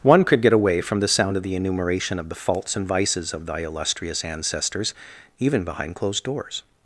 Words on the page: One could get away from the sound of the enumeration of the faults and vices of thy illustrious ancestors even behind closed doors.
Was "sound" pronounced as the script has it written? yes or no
yes